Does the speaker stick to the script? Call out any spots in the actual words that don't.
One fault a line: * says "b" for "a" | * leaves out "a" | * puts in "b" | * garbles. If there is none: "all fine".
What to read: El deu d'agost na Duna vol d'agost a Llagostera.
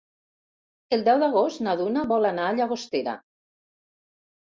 * says "anar" for "d'agost"